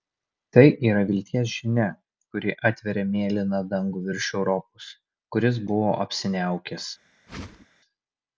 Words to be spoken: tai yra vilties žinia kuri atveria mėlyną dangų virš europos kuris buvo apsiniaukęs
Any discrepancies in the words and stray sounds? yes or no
yes